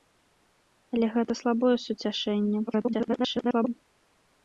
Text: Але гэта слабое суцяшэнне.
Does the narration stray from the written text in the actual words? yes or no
yes